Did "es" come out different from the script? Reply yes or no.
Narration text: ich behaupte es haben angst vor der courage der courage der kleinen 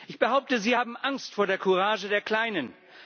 yes